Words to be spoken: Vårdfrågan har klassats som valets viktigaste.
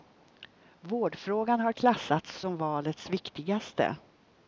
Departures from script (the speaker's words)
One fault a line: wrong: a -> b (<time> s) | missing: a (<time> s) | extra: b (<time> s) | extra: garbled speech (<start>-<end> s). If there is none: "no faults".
no faults